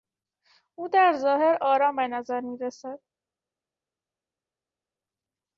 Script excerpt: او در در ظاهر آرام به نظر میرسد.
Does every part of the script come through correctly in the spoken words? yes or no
no